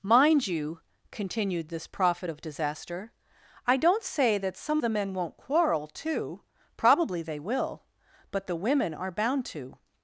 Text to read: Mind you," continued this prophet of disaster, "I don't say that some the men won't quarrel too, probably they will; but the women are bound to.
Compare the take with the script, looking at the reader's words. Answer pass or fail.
pass